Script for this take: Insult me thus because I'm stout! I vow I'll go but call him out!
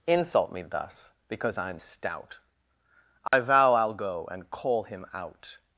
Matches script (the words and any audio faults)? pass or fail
fail